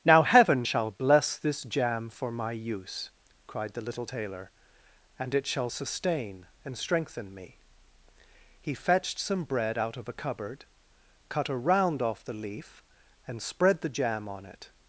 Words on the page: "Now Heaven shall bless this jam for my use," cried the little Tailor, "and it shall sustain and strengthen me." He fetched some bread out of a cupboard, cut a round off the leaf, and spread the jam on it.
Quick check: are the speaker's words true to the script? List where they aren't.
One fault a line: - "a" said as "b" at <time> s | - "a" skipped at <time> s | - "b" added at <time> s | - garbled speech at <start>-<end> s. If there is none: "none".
none